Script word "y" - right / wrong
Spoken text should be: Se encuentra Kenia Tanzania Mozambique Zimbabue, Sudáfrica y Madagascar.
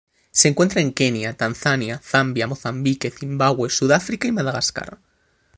right